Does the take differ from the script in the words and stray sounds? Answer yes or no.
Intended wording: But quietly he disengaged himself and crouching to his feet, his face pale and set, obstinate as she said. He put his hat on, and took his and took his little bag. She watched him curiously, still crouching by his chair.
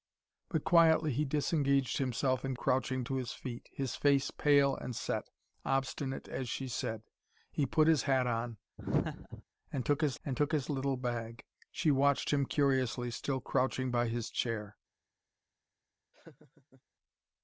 yes